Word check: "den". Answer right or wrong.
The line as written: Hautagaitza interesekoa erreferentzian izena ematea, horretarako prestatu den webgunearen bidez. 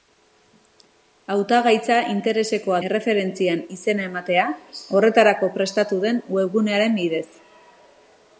right